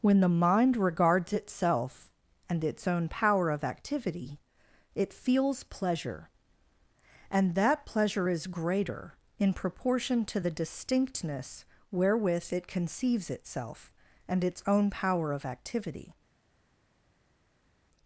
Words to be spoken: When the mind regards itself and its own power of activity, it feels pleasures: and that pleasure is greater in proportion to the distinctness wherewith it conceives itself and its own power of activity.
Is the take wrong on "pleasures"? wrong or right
wrong